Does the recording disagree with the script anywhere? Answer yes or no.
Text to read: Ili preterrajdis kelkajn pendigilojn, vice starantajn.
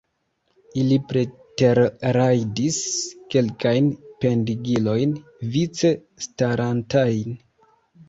no